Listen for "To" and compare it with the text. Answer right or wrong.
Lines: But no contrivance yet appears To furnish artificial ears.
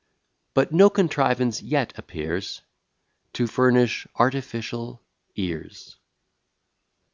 right